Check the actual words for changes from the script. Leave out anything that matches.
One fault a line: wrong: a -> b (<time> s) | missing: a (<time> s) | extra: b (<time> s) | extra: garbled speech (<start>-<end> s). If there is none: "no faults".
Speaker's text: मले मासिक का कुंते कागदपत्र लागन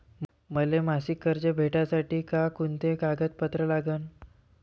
extra: कर्ज भेटासाठी (1.2 s)